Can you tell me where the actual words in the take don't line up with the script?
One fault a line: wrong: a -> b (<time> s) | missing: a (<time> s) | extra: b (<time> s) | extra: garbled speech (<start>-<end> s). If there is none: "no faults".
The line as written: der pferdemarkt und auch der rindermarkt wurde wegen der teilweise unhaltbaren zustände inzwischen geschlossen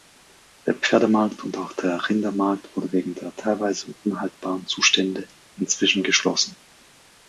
no faults